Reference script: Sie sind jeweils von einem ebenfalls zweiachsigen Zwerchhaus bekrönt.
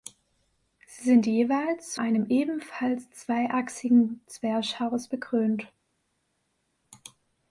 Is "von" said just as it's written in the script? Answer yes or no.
no